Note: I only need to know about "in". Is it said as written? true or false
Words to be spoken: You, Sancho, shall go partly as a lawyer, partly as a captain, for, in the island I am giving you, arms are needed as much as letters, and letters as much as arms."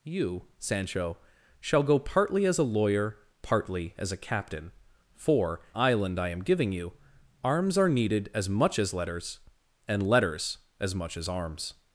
false